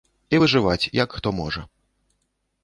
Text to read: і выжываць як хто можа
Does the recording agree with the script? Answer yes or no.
yes